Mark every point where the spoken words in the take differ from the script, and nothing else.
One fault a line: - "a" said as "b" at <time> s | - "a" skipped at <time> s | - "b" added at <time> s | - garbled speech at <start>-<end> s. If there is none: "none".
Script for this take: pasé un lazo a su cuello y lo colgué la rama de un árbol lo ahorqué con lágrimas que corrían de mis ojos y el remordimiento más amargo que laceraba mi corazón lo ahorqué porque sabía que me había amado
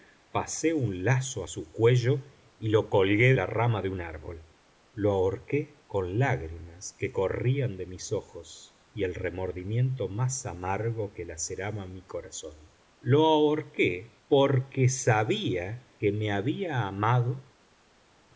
none